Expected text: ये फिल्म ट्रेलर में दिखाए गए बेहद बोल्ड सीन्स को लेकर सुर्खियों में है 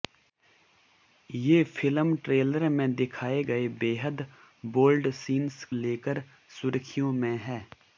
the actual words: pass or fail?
fail